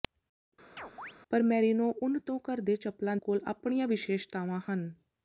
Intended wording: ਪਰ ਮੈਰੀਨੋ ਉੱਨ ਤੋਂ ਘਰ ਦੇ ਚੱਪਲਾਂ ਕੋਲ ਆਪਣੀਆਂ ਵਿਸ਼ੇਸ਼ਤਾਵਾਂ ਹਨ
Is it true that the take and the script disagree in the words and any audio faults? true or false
true